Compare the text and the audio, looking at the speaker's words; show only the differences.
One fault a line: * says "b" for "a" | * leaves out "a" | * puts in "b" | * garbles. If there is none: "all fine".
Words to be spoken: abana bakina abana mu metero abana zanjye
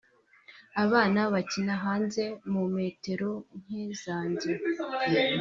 * says "hanze" for "abana"
* says "nke" for "abana"